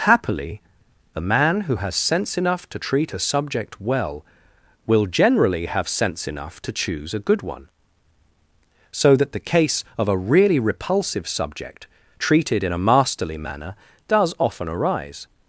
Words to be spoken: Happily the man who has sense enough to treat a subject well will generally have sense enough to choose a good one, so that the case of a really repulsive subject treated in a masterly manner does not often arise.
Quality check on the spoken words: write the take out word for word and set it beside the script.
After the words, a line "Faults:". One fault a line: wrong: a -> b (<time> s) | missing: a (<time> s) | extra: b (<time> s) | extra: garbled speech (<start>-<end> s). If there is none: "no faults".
Happily the man who has sense enough to treat a subject well will generally have sense enough to choose a good one, so that the case of a really repulsive subject treated in a masterly manner does often arise.
Faults:
missing: not (14.3 s)